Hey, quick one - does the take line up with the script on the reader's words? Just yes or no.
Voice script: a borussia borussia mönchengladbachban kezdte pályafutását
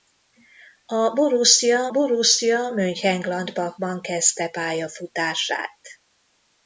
yes